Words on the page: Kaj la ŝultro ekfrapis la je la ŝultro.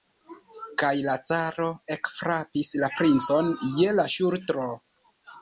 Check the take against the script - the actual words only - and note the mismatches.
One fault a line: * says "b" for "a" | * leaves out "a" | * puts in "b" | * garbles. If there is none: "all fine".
* says "caro" for "ŝultro"
* puts in "princon"